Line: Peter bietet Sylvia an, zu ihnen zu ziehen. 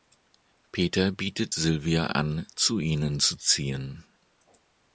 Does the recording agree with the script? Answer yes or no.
yes